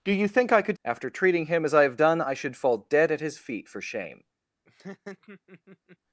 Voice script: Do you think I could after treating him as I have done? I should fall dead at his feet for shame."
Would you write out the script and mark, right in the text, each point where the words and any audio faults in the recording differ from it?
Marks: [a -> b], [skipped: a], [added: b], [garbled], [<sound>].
Do you think I could after treating him as I have done? I should fall dead at his feet for shame." [laugh]